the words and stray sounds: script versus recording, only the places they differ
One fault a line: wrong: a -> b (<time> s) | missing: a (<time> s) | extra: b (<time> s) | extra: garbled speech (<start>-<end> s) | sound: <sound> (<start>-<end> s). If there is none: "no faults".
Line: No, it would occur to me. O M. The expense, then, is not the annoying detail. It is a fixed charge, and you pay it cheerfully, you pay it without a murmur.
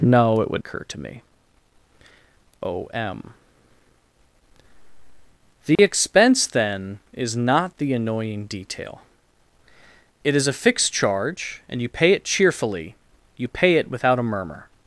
sound: dropout (5.8-5.8 s)